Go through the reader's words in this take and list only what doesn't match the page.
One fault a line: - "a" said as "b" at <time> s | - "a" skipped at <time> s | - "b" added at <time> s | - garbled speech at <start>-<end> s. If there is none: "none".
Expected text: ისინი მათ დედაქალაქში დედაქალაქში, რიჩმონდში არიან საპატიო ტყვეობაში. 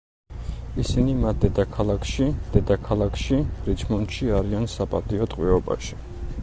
none